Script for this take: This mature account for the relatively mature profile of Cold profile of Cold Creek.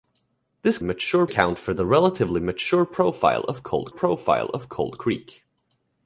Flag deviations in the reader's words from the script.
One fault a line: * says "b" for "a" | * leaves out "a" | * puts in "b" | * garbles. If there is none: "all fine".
all fine